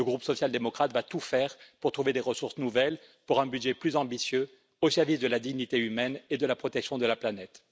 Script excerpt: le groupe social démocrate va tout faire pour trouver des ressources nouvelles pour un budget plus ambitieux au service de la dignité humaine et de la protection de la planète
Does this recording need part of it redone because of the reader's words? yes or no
no